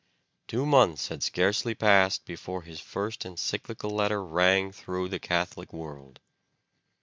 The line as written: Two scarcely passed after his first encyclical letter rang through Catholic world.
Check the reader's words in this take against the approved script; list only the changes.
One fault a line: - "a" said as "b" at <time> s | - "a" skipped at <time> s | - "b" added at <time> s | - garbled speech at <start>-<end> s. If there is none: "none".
- "months had" added at 0.7 s
- "after" said as "before" at 2.2 s
- "the" added at 5.1 s